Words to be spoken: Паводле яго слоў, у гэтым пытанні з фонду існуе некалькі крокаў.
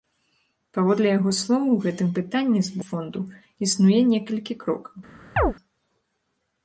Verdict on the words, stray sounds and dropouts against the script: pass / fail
fail